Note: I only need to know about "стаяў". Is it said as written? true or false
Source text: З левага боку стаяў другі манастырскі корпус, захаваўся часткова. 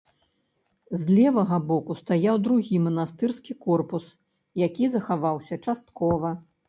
true